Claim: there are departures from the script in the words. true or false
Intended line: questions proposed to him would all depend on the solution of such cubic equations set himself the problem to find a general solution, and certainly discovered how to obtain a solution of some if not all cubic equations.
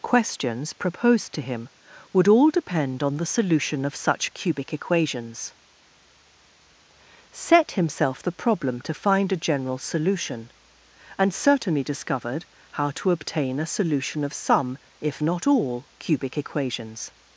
false